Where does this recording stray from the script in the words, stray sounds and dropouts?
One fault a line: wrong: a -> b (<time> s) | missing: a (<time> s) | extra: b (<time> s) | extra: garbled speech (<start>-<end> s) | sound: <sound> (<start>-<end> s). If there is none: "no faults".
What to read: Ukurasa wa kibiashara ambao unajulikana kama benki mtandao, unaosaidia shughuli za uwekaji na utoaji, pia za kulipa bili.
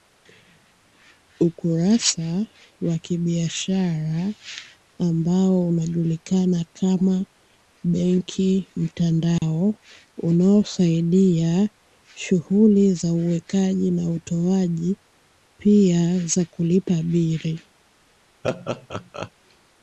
sound: dropout (9.4-9.4 s)
sound: laugh (18.4-19.3 s)